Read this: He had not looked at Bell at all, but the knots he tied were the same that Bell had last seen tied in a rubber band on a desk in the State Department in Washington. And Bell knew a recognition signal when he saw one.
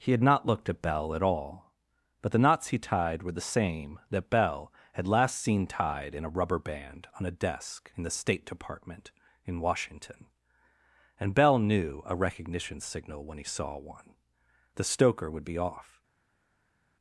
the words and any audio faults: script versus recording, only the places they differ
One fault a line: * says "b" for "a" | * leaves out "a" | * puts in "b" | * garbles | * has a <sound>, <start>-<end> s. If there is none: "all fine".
* puts in "The stoker would be off"